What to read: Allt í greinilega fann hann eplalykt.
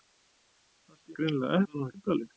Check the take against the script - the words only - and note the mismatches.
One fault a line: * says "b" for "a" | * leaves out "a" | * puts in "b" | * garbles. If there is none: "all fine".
all fine